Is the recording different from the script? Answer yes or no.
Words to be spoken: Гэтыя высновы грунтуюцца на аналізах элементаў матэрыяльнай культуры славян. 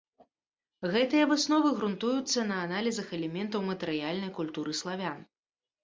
no